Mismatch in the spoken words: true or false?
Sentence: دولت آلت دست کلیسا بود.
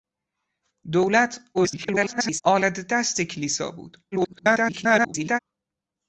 true